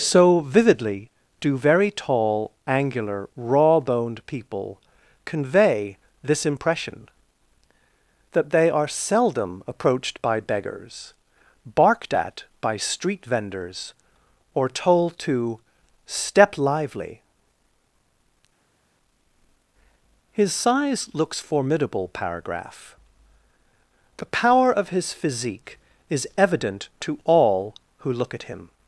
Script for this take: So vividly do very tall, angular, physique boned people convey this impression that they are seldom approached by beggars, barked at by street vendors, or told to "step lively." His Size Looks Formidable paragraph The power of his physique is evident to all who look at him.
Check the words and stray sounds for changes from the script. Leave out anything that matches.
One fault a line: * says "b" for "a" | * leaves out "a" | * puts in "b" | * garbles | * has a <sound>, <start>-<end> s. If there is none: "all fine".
* says "raw" for "physique"